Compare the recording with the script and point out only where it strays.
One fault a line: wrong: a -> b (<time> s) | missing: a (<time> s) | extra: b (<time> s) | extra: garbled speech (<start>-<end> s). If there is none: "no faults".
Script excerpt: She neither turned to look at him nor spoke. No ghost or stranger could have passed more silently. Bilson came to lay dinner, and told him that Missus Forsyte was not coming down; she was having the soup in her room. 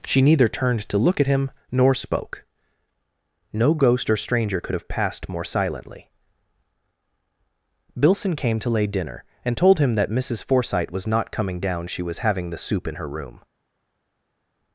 no faults